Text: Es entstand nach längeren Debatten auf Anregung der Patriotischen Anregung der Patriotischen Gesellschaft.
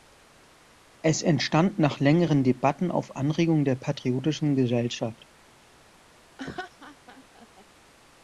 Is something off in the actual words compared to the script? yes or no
yes